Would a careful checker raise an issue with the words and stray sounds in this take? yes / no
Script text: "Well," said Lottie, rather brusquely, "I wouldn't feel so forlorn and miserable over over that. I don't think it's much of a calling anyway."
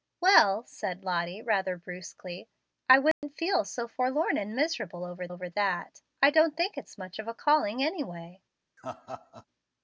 yes